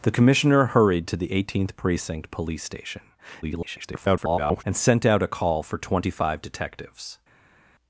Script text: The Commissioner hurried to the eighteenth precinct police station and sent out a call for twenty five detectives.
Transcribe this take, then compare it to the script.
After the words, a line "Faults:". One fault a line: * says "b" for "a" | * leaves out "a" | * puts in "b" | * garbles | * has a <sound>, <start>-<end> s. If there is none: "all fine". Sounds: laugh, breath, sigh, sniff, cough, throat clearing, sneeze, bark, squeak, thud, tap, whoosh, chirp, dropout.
The Commissioner hurried to the eighteenth precinct police station [garbled] and sent out a call for twenty five detectives.
Faults:
* garbles